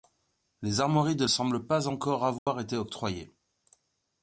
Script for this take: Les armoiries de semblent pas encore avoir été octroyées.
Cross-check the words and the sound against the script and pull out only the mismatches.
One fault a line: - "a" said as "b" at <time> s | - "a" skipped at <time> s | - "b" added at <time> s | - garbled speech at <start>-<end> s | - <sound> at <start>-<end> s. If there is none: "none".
- dropout at 2.4-2.5 s